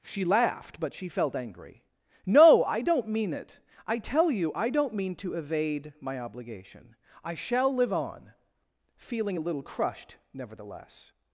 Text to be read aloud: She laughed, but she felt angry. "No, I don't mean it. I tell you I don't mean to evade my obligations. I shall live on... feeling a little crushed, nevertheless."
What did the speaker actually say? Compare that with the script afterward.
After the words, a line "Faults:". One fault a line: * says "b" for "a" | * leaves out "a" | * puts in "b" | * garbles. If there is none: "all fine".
She laughed, but she felt angry. "No, I don't mean it. I tell you I don't mean to evade my obligation. I shall live on... feeling a little crushed, nevertheless."
Faults:
* says "obligation" for "obligations"